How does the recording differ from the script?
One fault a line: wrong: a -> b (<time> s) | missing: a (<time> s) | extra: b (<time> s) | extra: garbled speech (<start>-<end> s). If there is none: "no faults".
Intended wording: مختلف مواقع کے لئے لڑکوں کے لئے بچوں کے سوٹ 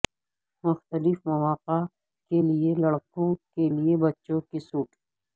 no faults